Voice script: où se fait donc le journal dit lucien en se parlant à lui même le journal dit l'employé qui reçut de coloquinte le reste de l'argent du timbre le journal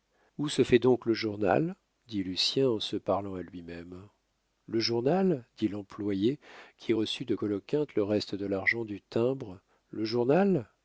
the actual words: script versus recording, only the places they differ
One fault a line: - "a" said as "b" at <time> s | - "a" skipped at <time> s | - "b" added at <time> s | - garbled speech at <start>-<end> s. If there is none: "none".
none